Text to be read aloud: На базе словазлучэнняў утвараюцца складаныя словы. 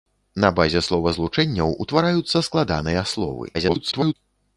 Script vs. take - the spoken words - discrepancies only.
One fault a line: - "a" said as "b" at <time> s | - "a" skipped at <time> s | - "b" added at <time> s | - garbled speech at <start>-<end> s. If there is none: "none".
- garbled speech at 3.5-4.1 s